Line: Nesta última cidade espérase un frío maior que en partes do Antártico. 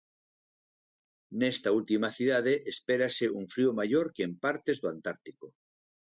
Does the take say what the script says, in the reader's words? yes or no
yes